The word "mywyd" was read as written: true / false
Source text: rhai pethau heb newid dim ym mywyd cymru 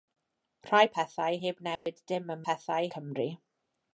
false